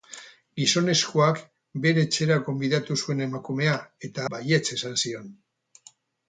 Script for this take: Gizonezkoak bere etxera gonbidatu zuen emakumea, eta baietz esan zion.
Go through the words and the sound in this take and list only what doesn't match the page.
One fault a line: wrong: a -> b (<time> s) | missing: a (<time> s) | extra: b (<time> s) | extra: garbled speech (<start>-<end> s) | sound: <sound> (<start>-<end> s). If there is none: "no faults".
no faults